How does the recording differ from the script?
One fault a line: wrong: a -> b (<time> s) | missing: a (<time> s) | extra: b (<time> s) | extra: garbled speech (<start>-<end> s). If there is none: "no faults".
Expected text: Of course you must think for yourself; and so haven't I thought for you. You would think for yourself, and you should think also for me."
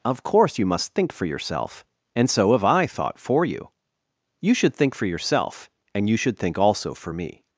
wrong: haven't -> have (2.5 s)
wrong: would -> should (4.5 s)